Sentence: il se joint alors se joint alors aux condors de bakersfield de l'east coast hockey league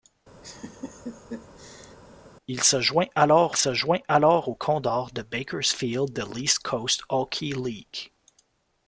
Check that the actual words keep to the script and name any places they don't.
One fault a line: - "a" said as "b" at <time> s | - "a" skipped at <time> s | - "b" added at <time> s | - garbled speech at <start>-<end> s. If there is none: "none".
none